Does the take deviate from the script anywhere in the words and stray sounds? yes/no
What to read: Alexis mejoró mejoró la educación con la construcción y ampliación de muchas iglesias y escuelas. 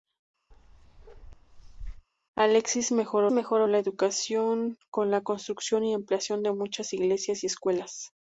yes